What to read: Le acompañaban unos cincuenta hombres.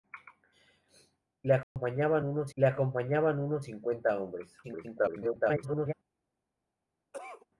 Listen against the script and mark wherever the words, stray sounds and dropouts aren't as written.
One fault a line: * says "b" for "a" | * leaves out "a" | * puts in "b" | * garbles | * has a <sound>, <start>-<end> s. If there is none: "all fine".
* has a dropout, 1.6-1.8 s
* puts in "le acompañaban unos"
* garbles
* has a cough, 7.1-7.5 s